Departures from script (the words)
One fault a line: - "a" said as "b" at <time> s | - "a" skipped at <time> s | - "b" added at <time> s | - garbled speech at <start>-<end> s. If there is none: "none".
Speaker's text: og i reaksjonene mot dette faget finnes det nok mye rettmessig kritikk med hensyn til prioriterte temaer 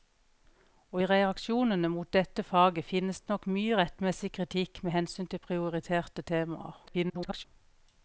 - garbled speech at 6.9-7.4 s